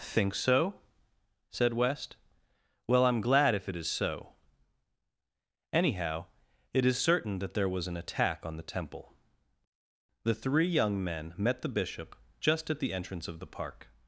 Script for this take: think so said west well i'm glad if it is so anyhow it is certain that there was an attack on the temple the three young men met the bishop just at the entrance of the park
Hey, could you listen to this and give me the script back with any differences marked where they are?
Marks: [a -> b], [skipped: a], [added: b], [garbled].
think so said west well i'm glad if it is so anyhow it is certain that there was an attack on the temple the three young men met the bishop just at the entrance of the park